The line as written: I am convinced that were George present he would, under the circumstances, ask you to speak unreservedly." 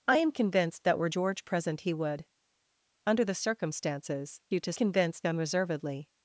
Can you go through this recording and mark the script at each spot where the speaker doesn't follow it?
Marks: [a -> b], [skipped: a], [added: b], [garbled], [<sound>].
I am convinced that were George present he would, under the circumstances, [skipped: ask] you to [speak -> convinced] unreservedly."